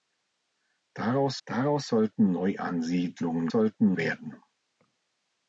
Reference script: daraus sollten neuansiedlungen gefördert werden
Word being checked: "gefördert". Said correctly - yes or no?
no